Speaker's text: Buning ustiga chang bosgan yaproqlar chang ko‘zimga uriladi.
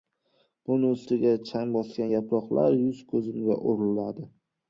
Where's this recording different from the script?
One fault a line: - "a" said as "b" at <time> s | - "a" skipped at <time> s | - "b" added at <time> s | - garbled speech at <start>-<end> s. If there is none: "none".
- "chang" said as "yuz" at 2.8 s